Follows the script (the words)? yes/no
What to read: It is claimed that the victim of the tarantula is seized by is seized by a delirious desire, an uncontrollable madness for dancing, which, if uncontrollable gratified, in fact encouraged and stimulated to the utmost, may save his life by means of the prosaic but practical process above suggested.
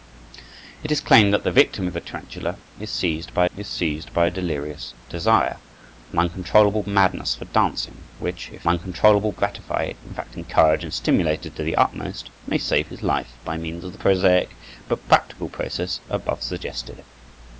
yes